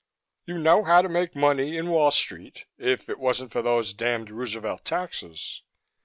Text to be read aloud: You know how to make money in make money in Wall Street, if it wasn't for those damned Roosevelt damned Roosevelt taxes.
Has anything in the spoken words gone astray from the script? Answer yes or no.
yes